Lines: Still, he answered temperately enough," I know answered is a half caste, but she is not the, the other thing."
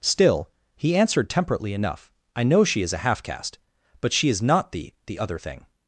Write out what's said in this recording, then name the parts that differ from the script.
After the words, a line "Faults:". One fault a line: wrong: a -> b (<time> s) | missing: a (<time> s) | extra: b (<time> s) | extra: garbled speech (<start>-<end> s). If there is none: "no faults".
Still, he answered temperately enough," I know she is a half caste, but she is not the, the other thing."
Faults:
wrong: answered -> she (2.6 s)